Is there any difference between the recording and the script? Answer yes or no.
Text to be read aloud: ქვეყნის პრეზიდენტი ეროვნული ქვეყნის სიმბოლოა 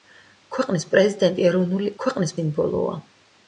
no